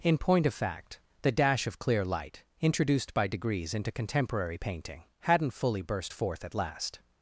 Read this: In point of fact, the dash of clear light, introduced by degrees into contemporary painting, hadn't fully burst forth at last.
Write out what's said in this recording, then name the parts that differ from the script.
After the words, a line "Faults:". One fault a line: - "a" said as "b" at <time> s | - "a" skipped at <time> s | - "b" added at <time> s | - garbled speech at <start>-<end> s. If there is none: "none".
In point of fact, the dash of clear light, introduced by degrees into contemporary painting, hadn't fully burst forth at last.
Faults:
none